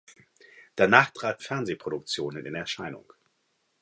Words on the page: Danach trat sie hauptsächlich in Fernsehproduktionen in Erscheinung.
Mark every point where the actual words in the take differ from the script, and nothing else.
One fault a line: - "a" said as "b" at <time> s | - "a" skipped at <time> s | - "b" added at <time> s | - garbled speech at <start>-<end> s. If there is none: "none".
- "sie hauptsächlich in" skipped at 1.4 s